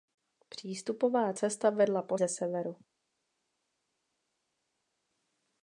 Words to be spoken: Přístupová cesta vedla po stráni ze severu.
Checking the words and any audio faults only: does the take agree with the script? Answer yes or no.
no